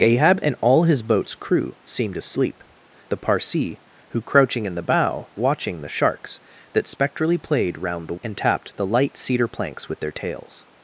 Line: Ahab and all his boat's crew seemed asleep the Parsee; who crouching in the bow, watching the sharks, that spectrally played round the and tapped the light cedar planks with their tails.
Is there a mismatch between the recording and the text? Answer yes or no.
no